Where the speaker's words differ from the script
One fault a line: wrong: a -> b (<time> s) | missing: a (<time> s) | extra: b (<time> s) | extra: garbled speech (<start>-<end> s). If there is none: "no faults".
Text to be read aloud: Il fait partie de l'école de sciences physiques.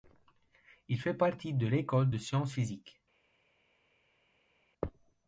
no faults